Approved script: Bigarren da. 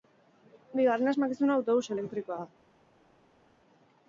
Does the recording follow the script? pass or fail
fail